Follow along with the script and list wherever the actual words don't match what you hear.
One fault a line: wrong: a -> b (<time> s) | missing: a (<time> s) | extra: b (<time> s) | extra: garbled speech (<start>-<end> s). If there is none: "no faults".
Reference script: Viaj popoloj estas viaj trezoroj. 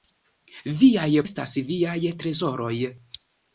missing: popoloj (1.1 s)